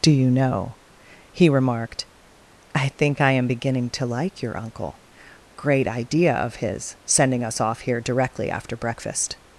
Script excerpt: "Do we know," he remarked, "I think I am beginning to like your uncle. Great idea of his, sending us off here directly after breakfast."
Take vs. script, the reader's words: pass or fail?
fail